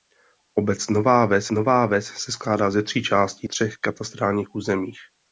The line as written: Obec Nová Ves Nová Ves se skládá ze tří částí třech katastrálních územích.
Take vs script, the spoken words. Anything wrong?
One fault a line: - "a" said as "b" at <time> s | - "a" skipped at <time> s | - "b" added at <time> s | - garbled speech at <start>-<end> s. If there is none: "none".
none